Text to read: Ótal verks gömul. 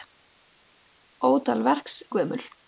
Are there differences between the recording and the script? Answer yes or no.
no